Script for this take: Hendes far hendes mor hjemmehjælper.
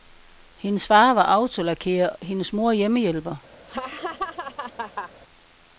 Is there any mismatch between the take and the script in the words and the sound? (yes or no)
yes